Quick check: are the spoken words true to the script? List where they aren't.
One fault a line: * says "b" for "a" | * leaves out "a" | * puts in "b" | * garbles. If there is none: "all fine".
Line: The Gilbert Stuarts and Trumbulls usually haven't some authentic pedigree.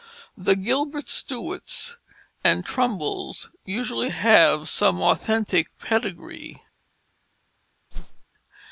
* says "have" for "haven't"